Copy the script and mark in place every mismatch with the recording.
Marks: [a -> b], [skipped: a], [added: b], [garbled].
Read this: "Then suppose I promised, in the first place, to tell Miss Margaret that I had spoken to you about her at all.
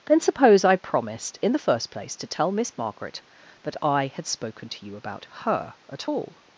"Then suppose I promised, in the first place, to tell Miss Margaret that I had spoken to you about her at all.